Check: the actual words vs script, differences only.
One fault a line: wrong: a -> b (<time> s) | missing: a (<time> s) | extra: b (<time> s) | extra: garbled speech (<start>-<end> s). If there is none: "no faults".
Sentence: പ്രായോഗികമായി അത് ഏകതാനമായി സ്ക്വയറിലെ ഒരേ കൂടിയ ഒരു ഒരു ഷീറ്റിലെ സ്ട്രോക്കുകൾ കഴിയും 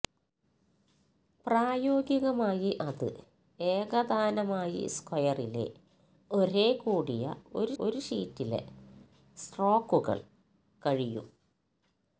no faults